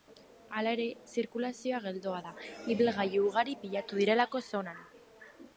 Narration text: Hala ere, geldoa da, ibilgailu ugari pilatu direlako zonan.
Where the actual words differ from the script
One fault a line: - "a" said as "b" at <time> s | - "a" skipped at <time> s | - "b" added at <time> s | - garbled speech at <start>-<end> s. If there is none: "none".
- "zirkulazioa" added at 1.1 s